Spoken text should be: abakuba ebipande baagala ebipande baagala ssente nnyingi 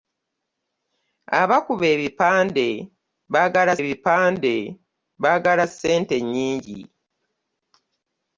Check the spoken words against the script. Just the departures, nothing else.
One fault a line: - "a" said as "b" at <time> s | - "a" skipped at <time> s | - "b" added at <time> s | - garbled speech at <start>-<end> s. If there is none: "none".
none